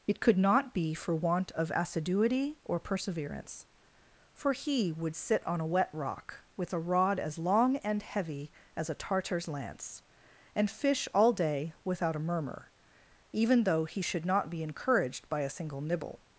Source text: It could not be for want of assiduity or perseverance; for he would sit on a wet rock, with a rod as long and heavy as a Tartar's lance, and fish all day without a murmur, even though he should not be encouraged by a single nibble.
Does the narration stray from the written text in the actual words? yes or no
no